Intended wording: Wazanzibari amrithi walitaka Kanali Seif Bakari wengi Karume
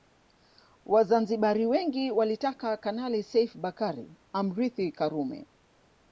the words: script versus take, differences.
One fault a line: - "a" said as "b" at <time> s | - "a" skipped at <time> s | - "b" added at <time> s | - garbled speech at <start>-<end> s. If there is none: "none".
- "amrithi" said as "wengi" at 1.6 s
- "wengi" said as "amrithi" at 4.3 s